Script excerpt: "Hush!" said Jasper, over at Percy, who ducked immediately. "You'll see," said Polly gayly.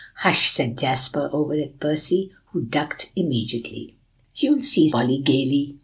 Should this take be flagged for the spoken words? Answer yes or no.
yes